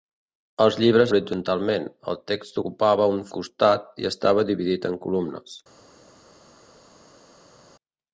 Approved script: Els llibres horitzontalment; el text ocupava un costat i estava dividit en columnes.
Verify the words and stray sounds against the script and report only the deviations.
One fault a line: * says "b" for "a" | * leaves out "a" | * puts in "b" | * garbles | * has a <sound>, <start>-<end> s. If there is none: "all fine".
all fine